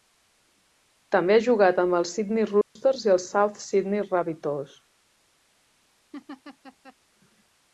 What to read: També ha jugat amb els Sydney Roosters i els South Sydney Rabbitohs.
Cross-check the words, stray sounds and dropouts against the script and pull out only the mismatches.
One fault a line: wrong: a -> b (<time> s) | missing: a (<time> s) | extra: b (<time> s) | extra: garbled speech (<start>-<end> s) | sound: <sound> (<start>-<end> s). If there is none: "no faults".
sound: dropout (2.6-2.8 s)
sound: laugh (6.1-7.0 s)